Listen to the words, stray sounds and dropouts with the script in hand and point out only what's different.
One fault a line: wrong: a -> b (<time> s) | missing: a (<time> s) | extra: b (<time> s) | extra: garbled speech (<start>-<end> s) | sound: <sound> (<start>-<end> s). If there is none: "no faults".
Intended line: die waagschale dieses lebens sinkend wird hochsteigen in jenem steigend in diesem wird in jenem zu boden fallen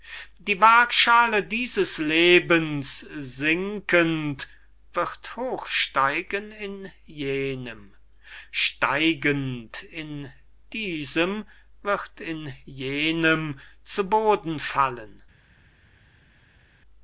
no faults